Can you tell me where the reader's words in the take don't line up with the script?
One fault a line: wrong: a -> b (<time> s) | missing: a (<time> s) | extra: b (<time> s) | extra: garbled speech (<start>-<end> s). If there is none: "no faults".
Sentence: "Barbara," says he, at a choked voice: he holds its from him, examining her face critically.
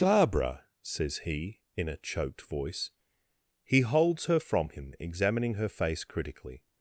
wrong: at -> in (1.7 s)
wrong: its -> her (4.3 s)